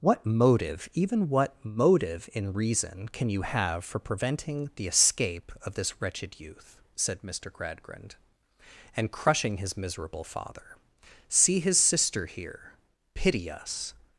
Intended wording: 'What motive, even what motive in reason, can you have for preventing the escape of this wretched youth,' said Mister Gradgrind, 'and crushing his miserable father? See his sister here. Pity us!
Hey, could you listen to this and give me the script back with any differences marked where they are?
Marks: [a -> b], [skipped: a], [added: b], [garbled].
'What motive, even what motive in reason, can you have for preventing the escape of this wretched youth,' said Mister Gradgrind, 'and crushing his miserable father? See his sister here. Pity us!